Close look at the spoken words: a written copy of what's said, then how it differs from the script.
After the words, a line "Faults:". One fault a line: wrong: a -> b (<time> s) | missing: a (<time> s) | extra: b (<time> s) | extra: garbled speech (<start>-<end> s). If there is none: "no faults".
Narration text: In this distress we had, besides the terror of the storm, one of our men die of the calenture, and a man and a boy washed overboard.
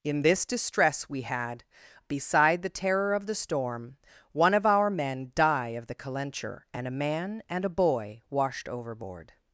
In this distress we had, beside the terror of the storm, one of our men die of the calenture, and a man and a boy washed overboard.
Faults:
wrong: besides -> beside (2.1 s)